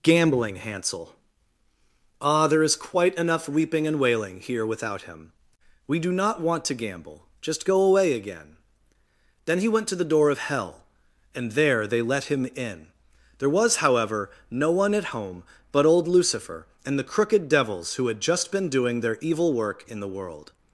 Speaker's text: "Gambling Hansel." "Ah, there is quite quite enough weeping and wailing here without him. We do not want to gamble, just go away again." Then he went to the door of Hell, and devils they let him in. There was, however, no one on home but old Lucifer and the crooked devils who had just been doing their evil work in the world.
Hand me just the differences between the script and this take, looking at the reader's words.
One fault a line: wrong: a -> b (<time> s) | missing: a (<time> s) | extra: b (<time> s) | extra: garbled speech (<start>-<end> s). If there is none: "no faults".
missing: quite (3.1 s)
wrong: devils -> there (11.5 s)
wrong: on -> at (14.9 s)